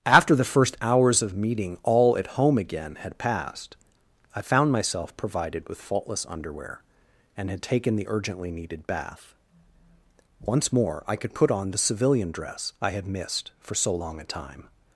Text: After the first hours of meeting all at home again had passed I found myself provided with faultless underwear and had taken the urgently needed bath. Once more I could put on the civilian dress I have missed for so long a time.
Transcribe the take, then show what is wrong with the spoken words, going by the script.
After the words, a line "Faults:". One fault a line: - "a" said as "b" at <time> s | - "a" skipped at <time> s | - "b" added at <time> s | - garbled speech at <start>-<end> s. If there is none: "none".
After the first hours of meeting all at home again had passed I found myself provided with faultless underwear and had taken the urgently needed bath. Once more I could put on the civilian dress I had missed for so long a time.
Faults:
- "have" said as "had" at 12.9 s